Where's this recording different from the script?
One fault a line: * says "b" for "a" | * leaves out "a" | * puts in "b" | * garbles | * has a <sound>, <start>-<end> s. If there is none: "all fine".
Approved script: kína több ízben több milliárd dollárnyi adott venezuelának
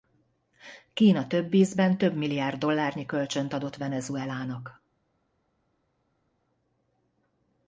* puts in "kölcsönt"